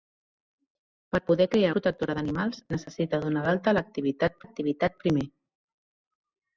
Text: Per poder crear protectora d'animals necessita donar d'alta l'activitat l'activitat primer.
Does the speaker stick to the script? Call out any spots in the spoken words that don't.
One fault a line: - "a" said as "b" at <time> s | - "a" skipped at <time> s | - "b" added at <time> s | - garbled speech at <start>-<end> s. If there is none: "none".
none